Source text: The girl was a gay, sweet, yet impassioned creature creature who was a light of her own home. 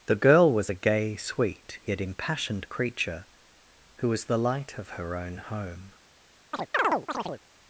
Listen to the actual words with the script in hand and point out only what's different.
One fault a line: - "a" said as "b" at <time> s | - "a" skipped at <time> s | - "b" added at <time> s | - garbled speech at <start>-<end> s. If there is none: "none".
- "creature" skipped at 3.3 s
- "a" said as "the" at 4.2 s